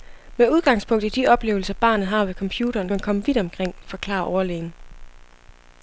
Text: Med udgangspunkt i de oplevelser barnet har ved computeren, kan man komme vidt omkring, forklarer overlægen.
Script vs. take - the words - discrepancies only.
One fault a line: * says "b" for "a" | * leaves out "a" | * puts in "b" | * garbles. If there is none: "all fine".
* leaves out "kan"